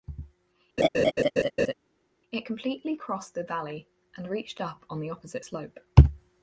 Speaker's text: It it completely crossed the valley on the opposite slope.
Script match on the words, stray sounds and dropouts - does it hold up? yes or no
no